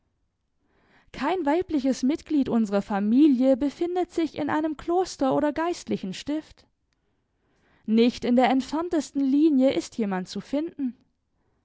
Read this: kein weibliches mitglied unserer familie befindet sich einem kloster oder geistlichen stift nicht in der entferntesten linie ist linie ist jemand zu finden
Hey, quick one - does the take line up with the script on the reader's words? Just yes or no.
no